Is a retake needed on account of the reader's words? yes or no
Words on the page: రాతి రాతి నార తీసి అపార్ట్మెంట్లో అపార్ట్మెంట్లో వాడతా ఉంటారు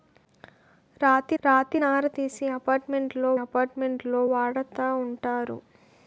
no